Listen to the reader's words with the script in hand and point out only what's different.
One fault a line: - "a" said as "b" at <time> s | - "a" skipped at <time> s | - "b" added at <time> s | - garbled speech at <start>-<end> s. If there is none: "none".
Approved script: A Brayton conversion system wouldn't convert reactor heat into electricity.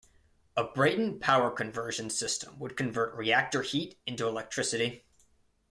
- "power" added at 1.2 s
- "wouldn't" said as "would" at 2.6 s